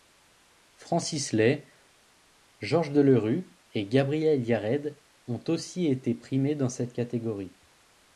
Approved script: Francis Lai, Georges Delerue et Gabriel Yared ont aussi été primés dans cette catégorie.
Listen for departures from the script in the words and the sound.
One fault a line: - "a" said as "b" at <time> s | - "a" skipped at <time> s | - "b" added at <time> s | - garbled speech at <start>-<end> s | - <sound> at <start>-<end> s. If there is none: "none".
none